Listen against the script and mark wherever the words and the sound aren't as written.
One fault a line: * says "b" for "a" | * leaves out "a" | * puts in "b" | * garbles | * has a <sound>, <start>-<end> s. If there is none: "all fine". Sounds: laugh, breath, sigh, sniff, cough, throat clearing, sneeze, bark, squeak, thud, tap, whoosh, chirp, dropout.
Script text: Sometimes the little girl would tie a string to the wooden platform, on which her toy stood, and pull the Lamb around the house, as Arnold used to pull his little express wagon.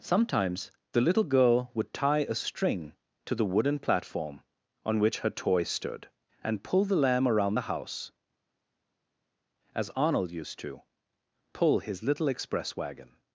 all fine